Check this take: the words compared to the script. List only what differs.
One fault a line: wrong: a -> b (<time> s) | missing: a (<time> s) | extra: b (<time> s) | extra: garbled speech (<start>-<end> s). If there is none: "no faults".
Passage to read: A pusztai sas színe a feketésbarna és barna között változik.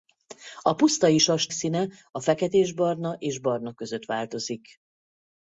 no faults